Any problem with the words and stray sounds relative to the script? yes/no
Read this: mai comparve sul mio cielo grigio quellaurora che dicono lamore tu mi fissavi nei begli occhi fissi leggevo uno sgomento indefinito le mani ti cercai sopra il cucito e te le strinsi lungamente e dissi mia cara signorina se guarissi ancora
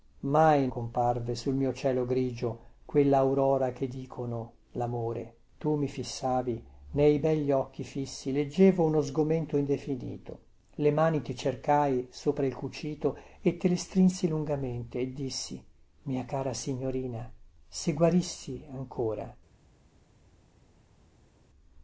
no